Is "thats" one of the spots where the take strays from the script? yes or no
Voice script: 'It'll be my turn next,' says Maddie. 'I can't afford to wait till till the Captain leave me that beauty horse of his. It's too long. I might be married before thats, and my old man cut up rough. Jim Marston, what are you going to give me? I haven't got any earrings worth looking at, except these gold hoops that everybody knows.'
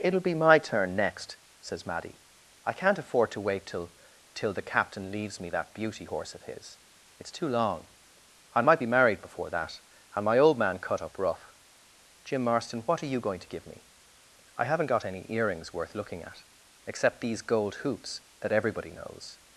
yes